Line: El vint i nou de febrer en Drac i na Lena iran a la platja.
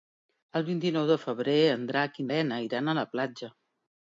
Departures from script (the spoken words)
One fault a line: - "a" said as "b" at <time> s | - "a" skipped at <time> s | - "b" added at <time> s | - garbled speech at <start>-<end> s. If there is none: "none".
- "na" skipped at 2.3 s